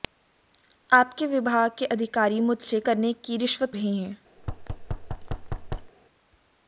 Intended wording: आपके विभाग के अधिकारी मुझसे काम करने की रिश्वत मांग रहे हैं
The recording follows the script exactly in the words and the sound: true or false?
false